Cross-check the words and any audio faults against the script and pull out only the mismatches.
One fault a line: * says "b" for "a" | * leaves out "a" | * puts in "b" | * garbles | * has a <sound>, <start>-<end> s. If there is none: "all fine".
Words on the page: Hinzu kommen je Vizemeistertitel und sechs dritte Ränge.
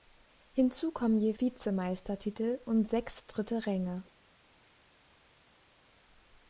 all fine